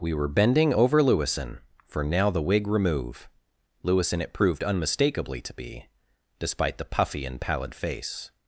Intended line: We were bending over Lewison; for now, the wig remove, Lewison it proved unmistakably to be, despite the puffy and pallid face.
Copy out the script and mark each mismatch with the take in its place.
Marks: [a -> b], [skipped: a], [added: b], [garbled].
We were bending over Lewison; for now, the wig remove, Lewison it proved unmistakably to be, despite the puffy and pallid face.